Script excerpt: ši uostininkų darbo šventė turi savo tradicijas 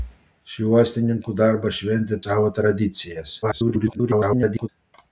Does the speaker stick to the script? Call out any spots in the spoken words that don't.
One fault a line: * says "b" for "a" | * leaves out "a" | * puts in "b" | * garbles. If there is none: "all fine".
* leaves out "turi"
* garbles